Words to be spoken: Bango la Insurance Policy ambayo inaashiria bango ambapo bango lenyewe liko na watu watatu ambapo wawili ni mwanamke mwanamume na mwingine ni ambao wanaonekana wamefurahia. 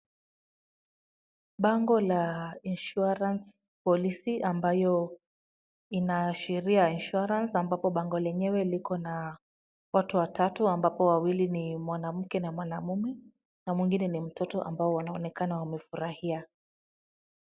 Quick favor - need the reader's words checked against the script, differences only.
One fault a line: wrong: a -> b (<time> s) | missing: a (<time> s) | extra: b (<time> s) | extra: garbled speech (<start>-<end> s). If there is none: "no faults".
wrong: bango -> insurance (6.9 s)
extra: na (12.4 s)
extra: mtoto (14.2 s)